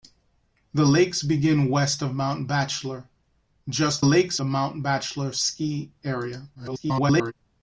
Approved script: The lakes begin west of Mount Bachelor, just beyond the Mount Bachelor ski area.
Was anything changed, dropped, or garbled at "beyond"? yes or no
yes